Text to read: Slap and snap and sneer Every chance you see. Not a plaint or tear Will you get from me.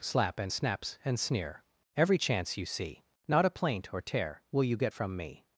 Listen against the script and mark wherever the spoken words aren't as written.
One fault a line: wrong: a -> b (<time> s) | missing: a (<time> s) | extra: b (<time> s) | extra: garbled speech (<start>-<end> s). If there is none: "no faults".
wrong: snap -> snaps (0.5 s)